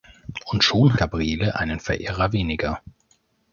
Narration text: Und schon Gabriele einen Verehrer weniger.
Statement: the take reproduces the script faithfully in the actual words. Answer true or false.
true